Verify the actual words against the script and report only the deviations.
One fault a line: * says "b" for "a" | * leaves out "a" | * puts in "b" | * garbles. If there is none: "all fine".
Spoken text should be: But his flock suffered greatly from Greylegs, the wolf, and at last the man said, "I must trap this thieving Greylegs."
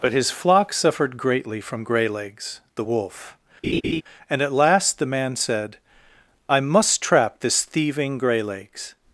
all fine